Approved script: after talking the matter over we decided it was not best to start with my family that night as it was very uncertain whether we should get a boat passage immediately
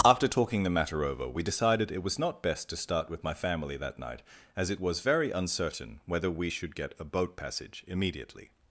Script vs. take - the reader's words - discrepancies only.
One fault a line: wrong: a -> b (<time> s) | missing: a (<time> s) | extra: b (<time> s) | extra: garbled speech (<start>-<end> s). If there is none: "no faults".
no faults